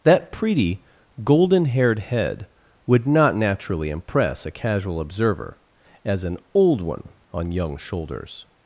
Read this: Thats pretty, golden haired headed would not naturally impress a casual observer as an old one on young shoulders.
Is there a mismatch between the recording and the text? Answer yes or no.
yes